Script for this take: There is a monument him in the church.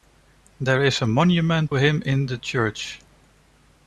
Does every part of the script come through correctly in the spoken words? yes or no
yes